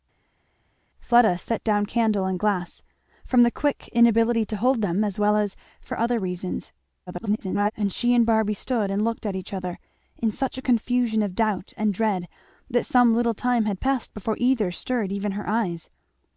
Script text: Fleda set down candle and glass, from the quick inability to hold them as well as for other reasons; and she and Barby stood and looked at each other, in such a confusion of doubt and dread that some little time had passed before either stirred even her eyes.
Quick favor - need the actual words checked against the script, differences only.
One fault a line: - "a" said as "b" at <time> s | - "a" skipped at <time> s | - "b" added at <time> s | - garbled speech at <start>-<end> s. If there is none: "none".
- garbled speech at 7.1-7.7 s